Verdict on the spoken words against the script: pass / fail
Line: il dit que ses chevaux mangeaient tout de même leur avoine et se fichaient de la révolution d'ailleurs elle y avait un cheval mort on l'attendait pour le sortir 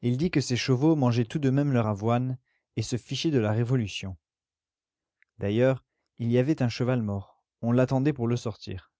fail